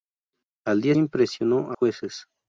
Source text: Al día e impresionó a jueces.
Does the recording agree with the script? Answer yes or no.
yes